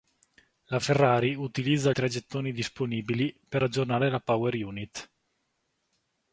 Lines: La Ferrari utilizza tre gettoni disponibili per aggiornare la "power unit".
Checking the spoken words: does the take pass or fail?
pass